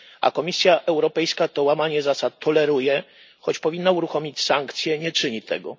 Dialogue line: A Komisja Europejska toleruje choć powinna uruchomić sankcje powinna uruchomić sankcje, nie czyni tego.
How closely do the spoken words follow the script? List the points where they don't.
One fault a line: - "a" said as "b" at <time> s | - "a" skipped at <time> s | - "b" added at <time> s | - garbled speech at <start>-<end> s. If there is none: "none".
- "toleruje choć powinna uruchomić sankcje" said as "to łamanie zasad toleruje choć" at 1.5 s